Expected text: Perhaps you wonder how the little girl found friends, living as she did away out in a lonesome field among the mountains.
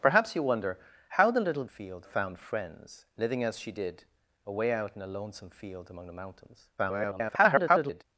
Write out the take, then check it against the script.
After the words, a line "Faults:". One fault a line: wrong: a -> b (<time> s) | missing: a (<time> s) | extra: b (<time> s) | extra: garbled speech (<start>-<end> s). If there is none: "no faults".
Perhaps you wonder how the little field found friends, living as she did away out in a lonesome field among the mountains. [garbled]
Faults:
wrong: girl -> field (1.7 s)
extra: garbled speech (6.8-8.0 s)